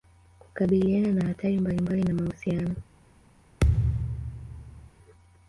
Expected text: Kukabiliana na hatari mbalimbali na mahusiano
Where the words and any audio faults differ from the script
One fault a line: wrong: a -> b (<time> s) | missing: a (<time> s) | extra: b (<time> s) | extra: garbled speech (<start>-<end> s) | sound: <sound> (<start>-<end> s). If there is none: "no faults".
sound: thud (3.6-4.9 s)